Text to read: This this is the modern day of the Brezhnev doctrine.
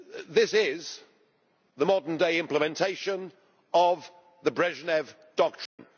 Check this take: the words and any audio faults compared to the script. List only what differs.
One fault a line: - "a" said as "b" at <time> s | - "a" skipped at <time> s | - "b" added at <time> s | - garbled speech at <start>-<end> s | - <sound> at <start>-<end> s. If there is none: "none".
- "this" skipped at 0.5 s
- "implementation" added at 2.4 s
- dropout at 5.7-5.8 s